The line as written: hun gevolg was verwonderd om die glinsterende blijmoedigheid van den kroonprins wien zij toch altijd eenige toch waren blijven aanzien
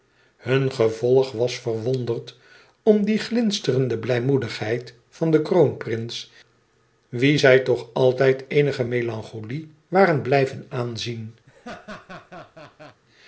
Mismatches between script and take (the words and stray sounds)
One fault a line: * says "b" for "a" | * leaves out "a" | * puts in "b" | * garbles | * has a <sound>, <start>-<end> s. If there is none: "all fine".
* says "melancholie" for "toch"
* has a laugh, 11.5-13.0 s